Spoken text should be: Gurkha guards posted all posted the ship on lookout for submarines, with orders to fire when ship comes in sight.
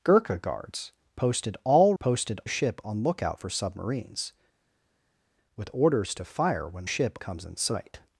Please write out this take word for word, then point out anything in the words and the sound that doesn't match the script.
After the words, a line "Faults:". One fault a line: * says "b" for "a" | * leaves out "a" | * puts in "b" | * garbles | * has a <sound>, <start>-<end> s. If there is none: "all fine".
Gurkha guards posted all posted the ship on lookout for submarines, with orders to fire when ship comes in sight.
Faults:
all fine